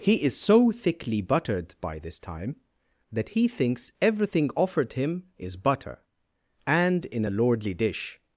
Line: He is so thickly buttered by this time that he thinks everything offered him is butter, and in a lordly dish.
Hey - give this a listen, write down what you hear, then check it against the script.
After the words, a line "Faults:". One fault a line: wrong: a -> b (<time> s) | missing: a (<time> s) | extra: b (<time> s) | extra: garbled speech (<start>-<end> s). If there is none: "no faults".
He is so thickly buttered by this time that he thinks everything offered him is butter, and in a lordly dish.
Faults:
no faults